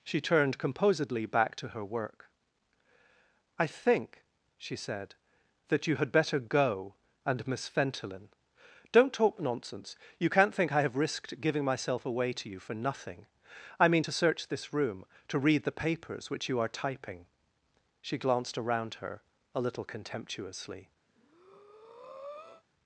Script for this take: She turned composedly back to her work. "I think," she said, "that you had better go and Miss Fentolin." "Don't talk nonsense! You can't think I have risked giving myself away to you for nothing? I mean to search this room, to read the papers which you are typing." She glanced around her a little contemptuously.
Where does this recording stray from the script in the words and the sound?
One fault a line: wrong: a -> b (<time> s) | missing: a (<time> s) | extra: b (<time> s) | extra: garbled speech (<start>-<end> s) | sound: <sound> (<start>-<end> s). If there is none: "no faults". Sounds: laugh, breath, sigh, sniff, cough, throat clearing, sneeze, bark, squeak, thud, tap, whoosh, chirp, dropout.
sound: breath (21.1-22.6 s)